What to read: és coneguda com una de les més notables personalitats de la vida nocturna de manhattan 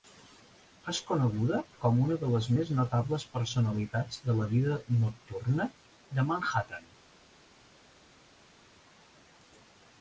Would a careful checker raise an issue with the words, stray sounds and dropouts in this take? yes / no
no